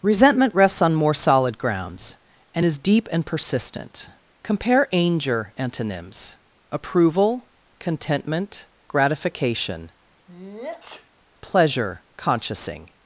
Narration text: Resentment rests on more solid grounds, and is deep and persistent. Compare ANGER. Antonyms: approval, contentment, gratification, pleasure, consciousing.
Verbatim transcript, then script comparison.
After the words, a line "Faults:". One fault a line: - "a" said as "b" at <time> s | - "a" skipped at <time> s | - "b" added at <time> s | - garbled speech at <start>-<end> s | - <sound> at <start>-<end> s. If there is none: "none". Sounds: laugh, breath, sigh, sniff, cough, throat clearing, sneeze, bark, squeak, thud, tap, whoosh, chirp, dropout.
Resentment rests on more solid grounds, and is deep and persistent. Compare ANGER. Antonyms: approval, contentment, gratification, pleasure, consciousing.
Faults:
- sneeze at 10.3-11.1 s